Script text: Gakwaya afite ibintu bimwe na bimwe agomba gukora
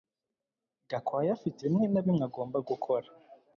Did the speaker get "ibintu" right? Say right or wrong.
wrong